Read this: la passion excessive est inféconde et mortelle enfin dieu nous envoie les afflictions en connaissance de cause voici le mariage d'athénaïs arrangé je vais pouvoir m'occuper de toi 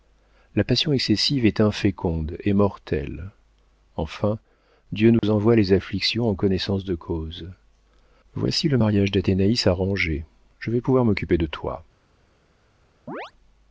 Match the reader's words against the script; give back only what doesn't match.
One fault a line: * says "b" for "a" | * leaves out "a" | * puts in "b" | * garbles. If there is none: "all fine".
all fine